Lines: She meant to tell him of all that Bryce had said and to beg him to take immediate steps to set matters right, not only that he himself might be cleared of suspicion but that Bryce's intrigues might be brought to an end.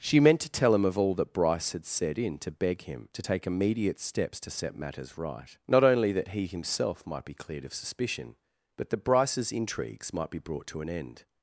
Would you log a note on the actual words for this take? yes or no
yes